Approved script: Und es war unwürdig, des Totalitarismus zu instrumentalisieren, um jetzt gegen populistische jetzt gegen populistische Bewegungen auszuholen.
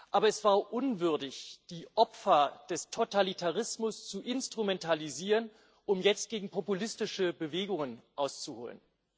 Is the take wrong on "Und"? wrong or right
wrong